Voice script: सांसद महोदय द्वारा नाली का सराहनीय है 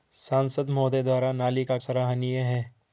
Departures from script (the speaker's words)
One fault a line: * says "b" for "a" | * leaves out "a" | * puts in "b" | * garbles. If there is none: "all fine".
all fine